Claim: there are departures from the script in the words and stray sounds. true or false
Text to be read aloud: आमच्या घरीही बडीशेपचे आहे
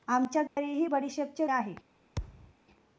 true